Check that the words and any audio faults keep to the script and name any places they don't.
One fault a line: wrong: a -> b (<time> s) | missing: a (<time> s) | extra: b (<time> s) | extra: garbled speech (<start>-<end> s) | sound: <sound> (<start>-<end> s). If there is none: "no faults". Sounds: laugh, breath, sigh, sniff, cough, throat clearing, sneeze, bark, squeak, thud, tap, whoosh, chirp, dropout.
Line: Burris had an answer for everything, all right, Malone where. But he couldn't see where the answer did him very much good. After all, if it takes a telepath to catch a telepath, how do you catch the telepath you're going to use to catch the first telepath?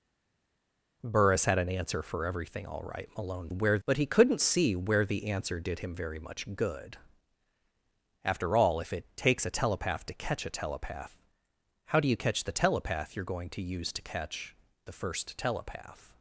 no faults